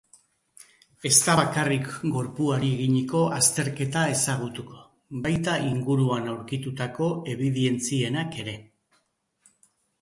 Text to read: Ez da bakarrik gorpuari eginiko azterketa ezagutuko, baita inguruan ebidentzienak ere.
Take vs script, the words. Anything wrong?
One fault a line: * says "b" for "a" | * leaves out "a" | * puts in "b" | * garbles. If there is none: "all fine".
* puts in "aurkitutako"